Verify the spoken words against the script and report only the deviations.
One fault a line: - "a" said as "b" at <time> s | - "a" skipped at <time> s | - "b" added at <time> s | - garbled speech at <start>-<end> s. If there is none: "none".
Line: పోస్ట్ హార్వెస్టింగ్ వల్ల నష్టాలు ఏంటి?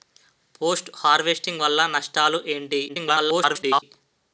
- garbled speech at 2.9-3.8 s